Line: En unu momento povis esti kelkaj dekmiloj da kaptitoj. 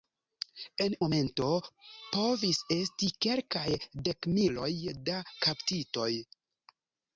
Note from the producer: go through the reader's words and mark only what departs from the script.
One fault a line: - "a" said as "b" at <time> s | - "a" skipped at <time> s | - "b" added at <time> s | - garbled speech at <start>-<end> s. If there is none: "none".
- "unu" skipped at 0.9 s